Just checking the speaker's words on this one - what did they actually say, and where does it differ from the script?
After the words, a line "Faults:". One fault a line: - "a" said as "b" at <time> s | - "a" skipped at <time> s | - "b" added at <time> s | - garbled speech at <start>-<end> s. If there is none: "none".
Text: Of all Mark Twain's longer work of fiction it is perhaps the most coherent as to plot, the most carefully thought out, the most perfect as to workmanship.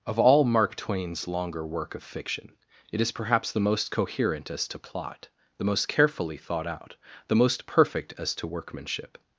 Of all Mark Twain's longer work of fiction it is perhaps the most coherent as to plot, the most carefully thought out, the most perfect as to workmanship.
Faults:
none